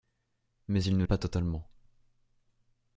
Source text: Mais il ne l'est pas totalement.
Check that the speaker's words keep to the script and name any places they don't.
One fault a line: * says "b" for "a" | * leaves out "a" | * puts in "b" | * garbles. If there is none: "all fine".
* leaves out "l'est"